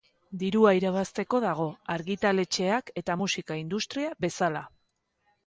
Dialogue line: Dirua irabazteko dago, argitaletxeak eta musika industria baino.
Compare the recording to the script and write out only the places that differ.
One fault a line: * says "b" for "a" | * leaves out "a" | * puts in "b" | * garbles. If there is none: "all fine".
* says "bezala" for "baino"